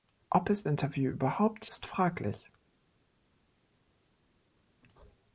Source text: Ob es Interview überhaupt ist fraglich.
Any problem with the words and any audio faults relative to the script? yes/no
no